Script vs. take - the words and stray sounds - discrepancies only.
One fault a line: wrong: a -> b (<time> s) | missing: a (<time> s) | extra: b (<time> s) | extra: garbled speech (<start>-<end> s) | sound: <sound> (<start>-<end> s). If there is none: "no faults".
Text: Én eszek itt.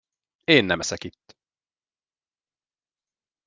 extra: nem (0.7 s)